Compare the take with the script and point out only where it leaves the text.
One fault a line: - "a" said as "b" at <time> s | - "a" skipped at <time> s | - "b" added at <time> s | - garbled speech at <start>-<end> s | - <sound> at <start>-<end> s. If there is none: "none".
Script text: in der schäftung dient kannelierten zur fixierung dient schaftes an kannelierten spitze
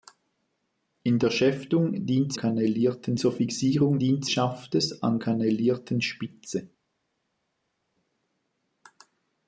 none